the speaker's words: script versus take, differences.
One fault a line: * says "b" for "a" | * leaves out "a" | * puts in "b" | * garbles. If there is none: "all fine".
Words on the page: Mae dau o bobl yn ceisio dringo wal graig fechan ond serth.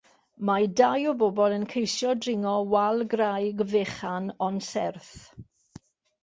all fine